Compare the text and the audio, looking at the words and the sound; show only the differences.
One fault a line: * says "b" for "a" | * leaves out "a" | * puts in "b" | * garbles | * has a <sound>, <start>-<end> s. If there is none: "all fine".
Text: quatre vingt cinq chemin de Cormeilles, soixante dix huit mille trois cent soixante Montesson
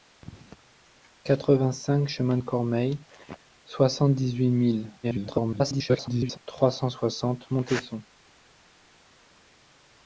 * garbles